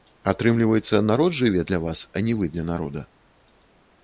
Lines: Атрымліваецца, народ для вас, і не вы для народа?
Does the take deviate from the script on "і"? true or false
true